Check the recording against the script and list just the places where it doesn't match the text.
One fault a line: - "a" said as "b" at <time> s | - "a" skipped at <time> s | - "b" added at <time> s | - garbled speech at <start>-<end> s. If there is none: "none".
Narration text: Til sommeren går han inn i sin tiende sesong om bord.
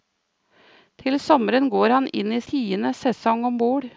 - "sin" skipped at 2.4 s